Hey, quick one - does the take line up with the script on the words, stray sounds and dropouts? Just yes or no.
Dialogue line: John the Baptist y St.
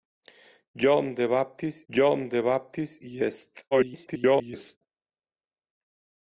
no